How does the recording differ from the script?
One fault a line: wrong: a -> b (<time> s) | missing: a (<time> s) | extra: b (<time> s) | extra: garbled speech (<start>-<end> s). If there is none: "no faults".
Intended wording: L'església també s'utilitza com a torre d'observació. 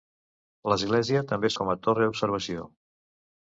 missing: s'utilitza (1.5 s)